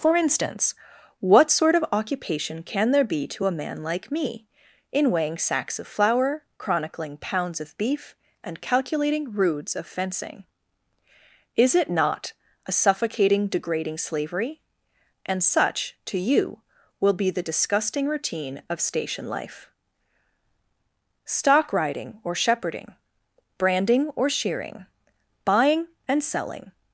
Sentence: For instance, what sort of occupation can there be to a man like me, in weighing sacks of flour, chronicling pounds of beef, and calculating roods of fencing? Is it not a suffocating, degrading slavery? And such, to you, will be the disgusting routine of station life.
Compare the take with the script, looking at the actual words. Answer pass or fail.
fail